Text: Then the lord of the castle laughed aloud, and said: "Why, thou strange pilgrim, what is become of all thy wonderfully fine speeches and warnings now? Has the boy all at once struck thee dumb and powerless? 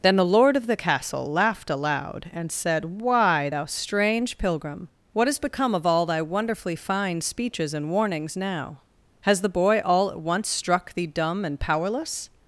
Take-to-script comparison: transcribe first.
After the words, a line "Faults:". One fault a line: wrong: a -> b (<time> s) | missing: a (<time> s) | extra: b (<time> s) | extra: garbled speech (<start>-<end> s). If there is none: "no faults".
Then the lord of the castle laughed aloud, and said: "Why, thou strange pilgrim, what has become of all thy wonderfully fine speeches and warnings now? Has the boy all at once struck thee dumb and powerless?
Faults:
wrong: is -> has (5.3 s)